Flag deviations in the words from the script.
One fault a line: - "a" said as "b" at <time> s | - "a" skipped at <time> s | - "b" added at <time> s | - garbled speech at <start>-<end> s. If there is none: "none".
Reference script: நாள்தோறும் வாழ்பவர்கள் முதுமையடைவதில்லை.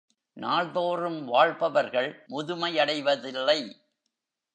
none